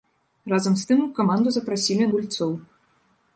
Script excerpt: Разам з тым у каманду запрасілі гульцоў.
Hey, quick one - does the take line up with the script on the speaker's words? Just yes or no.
yes